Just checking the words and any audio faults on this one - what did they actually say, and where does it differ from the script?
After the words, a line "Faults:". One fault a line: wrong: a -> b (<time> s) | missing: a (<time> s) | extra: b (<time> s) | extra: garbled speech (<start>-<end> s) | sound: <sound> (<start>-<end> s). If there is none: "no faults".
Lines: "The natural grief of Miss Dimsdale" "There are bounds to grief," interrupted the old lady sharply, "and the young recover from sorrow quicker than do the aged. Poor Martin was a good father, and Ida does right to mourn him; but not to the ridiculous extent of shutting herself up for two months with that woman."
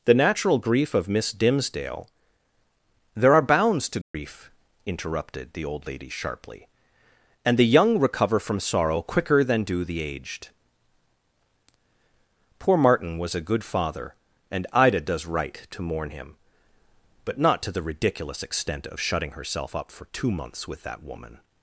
"The natural grief of Miss Dimsdale" "There are bounds to grief," interrupted the old lady sharply, "and the young recover from sorrow quicker than do the aged. Poor Martin was a good father, and Ida does right to mourn him; but not to the ridiculous extent of shutting herself up for two months with that woman."
Faults:
sound: dropout (4.0-4.1 s)